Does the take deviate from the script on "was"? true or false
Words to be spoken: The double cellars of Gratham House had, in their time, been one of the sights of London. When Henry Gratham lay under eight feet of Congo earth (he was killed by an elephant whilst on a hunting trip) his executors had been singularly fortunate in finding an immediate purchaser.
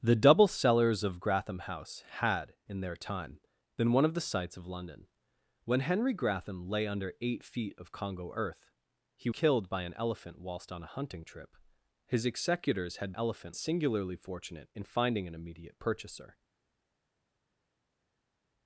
true